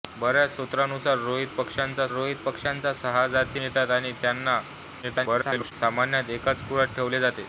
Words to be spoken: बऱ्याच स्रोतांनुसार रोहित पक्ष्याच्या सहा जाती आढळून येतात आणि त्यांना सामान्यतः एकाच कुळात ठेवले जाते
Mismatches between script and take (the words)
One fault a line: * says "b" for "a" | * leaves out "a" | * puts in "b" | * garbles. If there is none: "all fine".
* puts in "रोहित पक्ष्याच्या"
* leaves out "आढळून"
* garbles